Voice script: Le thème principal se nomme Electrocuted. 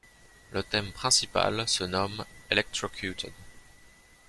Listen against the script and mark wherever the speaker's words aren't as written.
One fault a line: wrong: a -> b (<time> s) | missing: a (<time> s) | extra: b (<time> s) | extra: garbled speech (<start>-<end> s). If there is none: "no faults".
no faults